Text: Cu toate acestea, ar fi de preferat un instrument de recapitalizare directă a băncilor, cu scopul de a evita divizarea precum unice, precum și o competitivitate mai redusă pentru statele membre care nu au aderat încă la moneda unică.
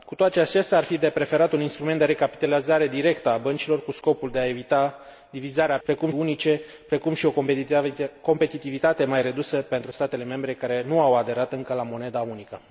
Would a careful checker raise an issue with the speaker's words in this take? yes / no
no